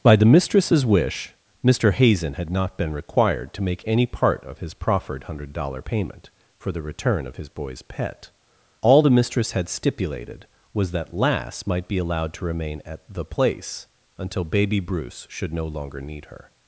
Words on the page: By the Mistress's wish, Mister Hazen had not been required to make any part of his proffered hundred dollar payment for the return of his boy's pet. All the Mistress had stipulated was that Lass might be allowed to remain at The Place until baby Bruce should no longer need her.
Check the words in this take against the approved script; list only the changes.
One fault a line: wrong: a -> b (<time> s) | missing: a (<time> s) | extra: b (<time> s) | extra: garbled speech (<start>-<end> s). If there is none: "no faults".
no faults